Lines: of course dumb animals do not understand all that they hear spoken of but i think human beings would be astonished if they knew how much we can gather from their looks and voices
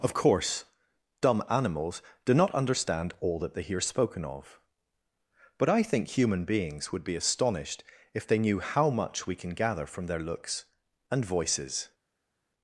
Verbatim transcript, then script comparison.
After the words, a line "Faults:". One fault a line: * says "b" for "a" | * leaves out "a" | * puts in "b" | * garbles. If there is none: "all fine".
of course dumb animals do not understand all that they hear spoken of but i think human beings would be astonished if they knew how much we can gather from their looks and voices
Faults:
all fine